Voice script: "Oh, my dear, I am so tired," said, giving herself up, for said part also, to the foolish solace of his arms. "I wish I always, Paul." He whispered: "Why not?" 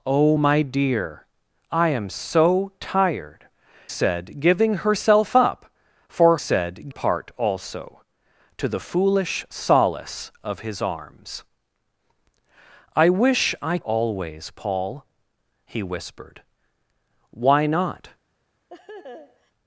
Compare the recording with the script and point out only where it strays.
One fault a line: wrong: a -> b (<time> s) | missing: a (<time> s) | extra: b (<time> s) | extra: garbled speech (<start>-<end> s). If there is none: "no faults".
no faults